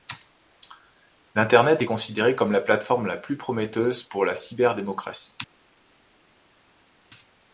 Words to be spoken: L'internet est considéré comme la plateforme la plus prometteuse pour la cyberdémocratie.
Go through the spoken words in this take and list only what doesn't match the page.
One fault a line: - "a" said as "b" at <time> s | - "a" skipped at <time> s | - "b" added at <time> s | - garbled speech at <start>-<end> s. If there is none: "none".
none